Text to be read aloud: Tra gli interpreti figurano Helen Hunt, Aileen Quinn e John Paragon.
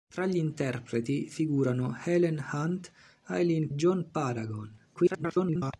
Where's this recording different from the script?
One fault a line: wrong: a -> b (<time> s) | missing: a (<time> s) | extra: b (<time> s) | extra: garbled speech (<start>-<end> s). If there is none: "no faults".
missing: Quinn e (3.7 s)
extra: garbled speech (4.9-5.7 s)